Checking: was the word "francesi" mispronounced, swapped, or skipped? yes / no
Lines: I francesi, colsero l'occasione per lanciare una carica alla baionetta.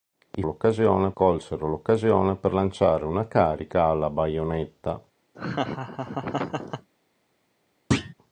yes